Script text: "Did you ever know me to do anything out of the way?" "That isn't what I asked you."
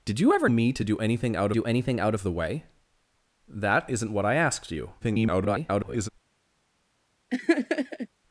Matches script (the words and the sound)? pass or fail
fail